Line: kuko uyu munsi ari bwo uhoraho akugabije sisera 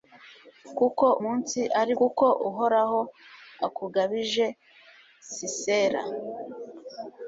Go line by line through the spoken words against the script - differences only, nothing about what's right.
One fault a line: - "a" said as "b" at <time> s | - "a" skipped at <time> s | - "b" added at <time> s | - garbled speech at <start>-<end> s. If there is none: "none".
- "uyu" skipped at 1.1 s
- "bwo" said as "kuko" at 2.0 s